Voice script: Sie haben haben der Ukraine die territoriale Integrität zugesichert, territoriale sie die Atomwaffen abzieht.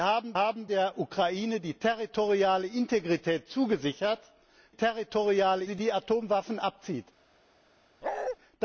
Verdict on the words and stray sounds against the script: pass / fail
fail